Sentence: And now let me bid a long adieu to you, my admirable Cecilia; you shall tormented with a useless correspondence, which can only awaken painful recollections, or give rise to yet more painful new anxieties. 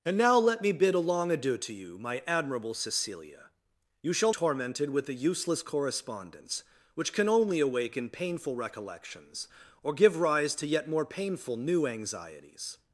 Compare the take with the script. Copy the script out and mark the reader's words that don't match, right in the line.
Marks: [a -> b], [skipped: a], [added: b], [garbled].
And now let me bid a long adieu to you, my admirable Cecilia; you shall tormented with a useless correspondence, which can only awaken painful recollections, or give rise to yet more painful new anxieties.